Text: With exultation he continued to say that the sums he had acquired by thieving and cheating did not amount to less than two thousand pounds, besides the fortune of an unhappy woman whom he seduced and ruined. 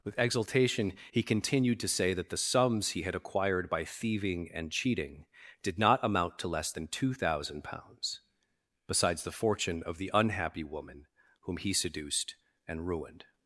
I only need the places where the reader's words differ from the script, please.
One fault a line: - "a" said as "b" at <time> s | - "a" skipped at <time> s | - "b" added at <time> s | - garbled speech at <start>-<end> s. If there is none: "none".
- "an" said as "the" at 10.0 s